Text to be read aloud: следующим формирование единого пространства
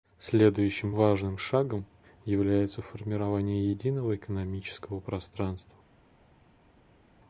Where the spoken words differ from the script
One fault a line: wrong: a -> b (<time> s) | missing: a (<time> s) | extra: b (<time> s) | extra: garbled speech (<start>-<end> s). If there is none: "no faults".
extra: важным шагом является (0.9 s)
extra: экономического (4.1 s)